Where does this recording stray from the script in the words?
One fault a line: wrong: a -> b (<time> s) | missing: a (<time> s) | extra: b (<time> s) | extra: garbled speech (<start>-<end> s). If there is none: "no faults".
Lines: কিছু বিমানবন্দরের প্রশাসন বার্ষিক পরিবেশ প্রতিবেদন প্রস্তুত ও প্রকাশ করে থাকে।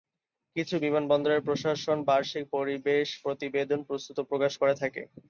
no faults